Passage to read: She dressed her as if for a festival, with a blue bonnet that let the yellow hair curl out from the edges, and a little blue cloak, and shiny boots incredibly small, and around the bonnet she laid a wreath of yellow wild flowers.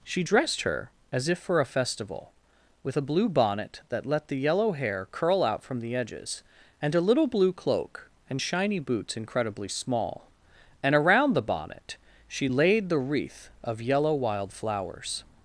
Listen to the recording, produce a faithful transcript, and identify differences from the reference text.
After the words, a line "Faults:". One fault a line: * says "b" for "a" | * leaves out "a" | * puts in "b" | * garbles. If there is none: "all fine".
She dressed her as if for a festival, with a blue bonnet that let the yellow hair curl out from the edges, and a little blue cloak, and shiny boots incredibly small, and around the bonnet she laid the wreath of yellow wild flowers.
Faults:
* says "the" for "a"